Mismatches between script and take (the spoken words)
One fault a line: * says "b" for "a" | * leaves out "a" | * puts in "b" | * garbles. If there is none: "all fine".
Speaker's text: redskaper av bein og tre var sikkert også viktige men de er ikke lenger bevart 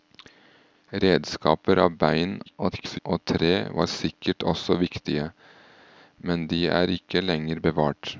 * garbles